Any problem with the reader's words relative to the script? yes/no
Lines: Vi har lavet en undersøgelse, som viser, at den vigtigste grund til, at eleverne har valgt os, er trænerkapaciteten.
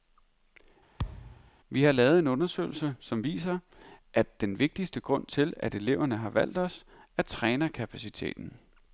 no